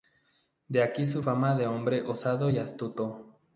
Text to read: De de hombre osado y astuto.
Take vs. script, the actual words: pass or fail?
fail